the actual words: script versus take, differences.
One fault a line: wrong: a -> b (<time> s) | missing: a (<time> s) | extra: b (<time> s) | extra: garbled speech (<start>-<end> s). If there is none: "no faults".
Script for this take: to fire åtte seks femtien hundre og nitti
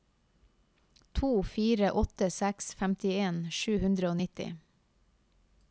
extra: sju (3.6 s)